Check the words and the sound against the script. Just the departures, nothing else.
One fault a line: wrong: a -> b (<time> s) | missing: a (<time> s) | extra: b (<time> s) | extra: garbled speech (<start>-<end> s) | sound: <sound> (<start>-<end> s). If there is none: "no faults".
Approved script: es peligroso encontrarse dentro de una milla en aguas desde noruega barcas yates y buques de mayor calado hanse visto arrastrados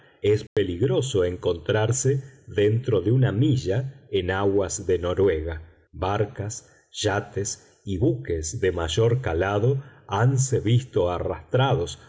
sound: dropout (0.5-0.6 s)
wrong: desde -> de (4.9 s)